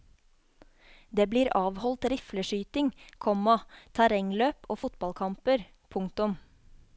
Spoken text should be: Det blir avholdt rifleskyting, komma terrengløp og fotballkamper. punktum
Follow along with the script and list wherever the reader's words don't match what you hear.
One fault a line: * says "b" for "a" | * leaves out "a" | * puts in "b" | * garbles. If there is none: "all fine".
all fine